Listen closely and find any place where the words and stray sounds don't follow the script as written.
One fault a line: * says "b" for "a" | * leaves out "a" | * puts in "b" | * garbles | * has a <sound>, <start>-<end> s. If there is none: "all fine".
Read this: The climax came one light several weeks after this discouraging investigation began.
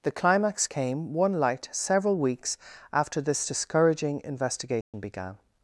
* has a dropout, 4.8-4.9 s